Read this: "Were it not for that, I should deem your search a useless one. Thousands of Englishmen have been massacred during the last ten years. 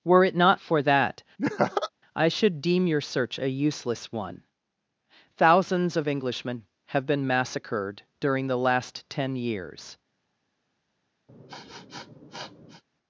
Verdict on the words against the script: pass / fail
pass